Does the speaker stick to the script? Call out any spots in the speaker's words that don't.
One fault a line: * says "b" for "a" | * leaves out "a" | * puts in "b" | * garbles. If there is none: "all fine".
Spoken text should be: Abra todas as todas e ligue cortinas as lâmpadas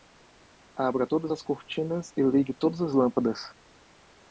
* says "cortinas" for "todas"
* says "todas" for "cortinas"